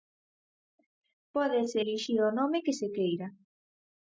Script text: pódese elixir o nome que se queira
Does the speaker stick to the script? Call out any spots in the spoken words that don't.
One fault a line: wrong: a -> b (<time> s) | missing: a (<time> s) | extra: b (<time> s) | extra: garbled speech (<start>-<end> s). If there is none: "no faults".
no faults